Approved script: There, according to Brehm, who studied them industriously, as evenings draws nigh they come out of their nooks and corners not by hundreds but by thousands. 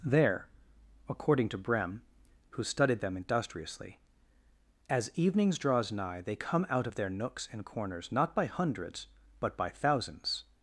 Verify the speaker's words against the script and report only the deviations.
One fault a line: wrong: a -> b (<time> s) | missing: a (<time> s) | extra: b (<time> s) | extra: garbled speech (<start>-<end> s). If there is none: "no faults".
no faults